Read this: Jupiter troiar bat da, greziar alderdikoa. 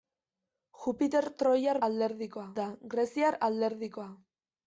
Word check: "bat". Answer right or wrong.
wrong